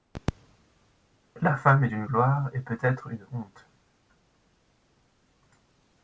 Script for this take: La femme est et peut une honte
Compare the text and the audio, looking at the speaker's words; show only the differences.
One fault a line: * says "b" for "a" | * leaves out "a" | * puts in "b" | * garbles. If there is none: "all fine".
* puts in "une gloire"
* puts in "être"